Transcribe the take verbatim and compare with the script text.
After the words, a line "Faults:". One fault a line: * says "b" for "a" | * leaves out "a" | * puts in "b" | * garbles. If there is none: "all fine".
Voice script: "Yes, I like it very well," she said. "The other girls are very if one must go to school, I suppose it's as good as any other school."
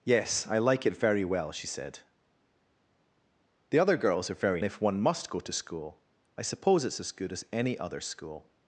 "Yes, I like it very well," she said. "The other girls are very if one must go to school, I suppose it's as good as any other school."
Faults:
all fine